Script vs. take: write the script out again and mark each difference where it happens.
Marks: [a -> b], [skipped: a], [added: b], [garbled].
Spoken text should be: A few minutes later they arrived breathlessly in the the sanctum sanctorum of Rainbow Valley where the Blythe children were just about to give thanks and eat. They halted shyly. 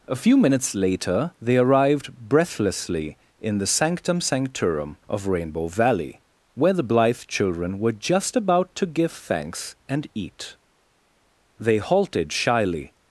A few minutes later they arrived breathlessly in the [skipped: the] sanctum sanctorum of Rainbow Valley where the Blythe children were just about to give thanks and eat. They halted shyly.